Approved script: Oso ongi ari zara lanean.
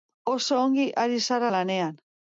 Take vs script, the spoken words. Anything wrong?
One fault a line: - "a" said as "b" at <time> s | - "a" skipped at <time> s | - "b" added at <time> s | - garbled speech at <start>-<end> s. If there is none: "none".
none